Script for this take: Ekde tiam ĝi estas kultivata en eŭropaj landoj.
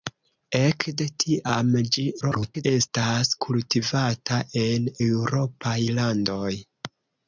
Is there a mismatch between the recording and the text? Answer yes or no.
yes